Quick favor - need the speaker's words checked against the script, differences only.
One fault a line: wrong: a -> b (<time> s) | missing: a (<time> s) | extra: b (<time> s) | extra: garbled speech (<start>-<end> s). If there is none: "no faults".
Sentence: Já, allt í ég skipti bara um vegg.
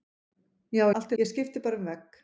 no faults